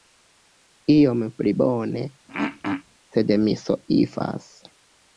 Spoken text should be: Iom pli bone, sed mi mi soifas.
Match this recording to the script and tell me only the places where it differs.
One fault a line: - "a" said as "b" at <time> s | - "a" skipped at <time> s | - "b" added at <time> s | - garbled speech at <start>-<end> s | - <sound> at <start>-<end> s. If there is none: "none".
- throat clearing at 2.3-2.8 s
- "mi" skipped at 3.6 s